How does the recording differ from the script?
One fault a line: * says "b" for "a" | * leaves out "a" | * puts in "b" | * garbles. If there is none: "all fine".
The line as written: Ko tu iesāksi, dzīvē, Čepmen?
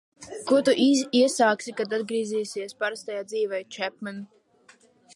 * puts in "kad atgriezīsies parastajā"